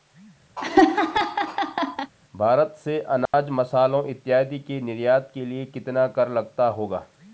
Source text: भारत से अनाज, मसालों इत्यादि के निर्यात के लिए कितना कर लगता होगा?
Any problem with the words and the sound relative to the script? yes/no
yes